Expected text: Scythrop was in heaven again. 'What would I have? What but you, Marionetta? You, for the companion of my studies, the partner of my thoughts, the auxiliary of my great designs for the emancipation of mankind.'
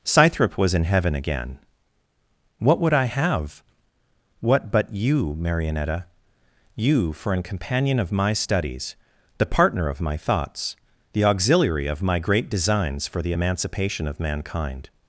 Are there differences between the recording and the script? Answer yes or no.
yes